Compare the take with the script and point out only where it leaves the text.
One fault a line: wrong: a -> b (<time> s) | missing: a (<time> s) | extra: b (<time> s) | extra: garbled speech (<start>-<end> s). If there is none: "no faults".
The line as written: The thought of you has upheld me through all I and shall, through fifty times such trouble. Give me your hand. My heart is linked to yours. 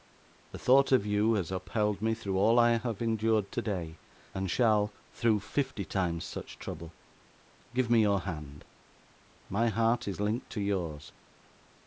extra: have endured today (2.8 s)